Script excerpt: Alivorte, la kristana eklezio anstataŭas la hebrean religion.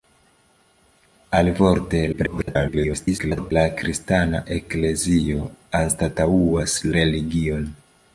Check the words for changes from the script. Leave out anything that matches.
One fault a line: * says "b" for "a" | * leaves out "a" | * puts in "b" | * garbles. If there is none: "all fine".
* garbles
* leaves out "la hebrean"